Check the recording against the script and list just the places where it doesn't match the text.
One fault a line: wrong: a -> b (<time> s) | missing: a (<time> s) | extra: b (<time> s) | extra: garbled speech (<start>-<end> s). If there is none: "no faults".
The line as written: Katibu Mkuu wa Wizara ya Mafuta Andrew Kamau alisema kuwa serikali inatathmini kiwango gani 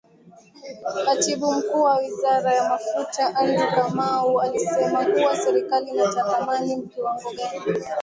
no faults